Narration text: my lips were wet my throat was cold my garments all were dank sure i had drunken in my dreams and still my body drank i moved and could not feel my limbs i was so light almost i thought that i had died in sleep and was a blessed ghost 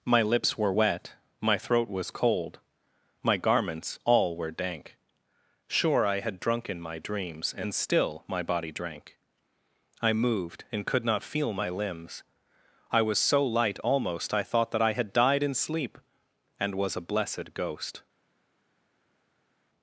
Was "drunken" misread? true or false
true